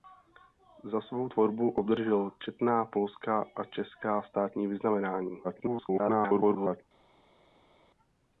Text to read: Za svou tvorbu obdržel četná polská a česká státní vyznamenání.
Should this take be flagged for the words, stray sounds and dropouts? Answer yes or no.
yes